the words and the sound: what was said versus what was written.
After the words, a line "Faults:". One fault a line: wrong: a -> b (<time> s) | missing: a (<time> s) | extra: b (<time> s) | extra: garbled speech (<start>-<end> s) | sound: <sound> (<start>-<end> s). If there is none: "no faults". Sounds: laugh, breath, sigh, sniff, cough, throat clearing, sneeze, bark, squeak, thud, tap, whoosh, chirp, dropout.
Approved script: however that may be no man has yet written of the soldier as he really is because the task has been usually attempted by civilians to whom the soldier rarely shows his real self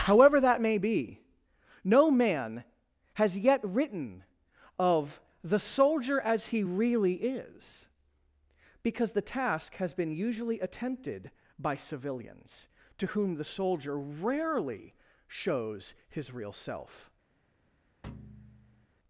however that may be no man has yet written of the soldier as he really is because the task has been usually attempted by civilians to whom the soldier rarely shows his real self
Faults:
sound: thud (18.0-18.9 s)